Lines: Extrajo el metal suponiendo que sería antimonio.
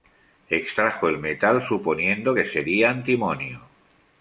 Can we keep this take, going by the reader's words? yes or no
yes